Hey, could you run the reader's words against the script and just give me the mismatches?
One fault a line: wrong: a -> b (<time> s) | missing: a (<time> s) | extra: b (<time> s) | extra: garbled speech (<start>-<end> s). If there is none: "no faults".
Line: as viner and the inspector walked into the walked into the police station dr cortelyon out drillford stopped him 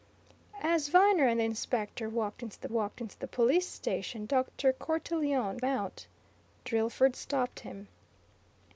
no faults